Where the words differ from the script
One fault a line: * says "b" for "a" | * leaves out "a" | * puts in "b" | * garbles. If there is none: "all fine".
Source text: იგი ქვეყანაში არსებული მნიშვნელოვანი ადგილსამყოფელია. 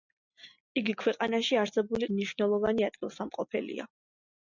all fine